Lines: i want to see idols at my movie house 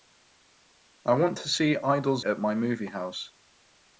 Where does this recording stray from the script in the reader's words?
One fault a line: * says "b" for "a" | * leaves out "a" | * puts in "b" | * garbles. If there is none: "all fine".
all fine